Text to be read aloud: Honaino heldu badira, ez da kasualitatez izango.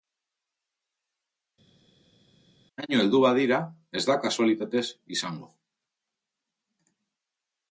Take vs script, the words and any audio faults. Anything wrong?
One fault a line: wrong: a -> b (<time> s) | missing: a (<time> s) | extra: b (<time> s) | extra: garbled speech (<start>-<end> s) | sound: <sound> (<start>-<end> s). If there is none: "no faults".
no faults